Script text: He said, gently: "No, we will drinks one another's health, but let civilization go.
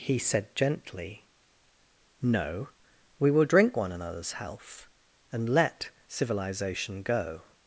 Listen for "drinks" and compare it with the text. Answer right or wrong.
wrong